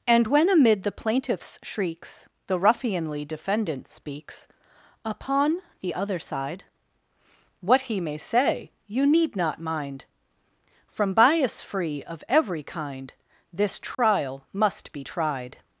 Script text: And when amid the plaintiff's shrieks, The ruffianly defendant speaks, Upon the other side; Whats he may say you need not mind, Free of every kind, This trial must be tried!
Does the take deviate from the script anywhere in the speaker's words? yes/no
yes